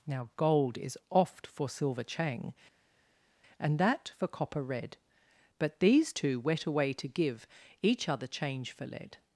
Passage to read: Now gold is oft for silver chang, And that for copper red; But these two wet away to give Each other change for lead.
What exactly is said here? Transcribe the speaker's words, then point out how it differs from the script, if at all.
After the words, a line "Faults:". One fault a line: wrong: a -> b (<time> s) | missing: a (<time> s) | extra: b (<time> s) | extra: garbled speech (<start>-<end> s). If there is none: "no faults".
Now gold is oft for silver chang, And that for copper red; But these two wet away to give Each other change for lead.
Faults:
no faults